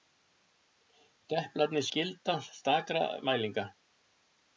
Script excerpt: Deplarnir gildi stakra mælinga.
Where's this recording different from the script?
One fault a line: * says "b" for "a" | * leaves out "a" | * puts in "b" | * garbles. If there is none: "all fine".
all fine